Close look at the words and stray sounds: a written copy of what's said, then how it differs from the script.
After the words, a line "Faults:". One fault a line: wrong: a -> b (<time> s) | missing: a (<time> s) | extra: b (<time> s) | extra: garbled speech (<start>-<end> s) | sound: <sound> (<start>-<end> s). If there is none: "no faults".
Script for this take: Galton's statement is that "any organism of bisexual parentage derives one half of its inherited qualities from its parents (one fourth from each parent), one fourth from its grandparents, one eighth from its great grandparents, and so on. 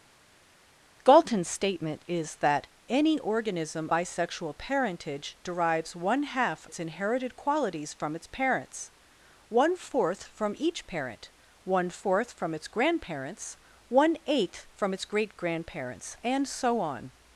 Galton's statement is that "any organism bisexual parentage derives one half its inherited qualities from its parents (one fourth from each parent), one fourth from its grandparents, one eighth from its great grandparents, and so on.
Faults:
missing: of (3.9 s)
missing: of (6.7 s)